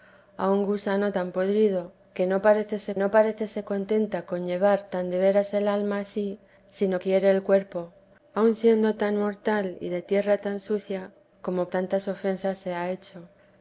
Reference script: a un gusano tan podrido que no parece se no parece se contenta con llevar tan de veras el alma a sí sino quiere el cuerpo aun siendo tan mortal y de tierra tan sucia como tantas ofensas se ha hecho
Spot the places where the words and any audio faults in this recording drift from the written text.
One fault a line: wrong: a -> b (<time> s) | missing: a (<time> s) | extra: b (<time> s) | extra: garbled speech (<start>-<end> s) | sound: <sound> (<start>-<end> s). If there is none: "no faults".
no faults